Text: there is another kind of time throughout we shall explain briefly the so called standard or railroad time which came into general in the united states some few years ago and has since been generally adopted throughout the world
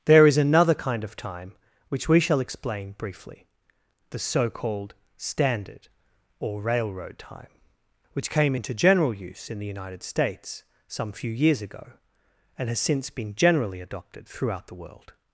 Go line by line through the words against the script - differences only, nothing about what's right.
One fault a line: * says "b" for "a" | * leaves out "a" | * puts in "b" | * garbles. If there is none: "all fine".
* says "which" for "throughout"
* puts in "use"